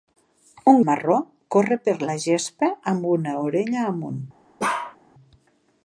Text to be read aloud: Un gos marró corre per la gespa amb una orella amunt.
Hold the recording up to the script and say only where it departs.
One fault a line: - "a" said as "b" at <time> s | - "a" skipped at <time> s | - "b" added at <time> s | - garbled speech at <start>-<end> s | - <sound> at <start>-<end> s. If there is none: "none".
- "gos" skipped at 0.8 s
- bark at 4.6-5.0 s